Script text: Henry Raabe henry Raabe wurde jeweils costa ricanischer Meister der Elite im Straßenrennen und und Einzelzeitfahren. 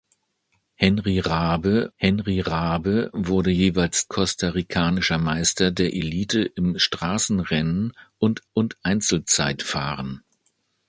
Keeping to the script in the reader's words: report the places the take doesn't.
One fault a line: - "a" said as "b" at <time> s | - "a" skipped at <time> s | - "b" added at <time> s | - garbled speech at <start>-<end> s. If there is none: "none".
none